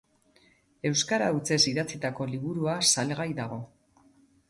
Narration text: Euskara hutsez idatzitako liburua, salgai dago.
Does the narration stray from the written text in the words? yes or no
no